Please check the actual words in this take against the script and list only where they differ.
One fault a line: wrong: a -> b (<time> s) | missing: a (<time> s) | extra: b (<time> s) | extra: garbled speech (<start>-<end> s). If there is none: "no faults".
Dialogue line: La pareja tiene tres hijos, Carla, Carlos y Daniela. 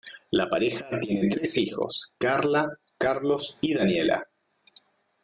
no faults